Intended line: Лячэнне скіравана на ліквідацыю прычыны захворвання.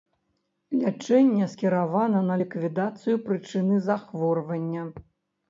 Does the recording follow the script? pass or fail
pass